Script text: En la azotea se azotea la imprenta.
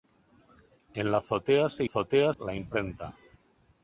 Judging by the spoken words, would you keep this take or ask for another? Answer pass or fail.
pass